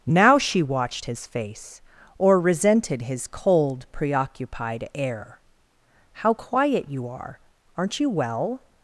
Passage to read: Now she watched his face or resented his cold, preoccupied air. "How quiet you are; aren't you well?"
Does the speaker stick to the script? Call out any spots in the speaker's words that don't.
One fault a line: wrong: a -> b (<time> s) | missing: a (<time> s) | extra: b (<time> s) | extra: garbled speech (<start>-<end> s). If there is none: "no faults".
no faults